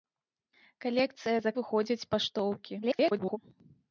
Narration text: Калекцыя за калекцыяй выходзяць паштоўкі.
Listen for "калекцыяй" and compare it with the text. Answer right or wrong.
wrong